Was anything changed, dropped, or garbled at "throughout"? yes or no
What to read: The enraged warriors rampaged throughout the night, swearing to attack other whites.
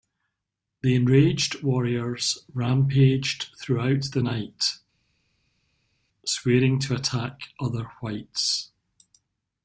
no